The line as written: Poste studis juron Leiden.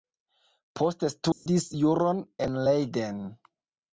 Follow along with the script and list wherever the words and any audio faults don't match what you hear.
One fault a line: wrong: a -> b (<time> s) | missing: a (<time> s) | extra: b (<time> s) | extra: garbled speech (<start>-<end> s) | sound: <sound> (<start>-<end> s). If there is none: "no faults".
sound: dropout (1.3-1.5 s)
extra: en (2.5 s)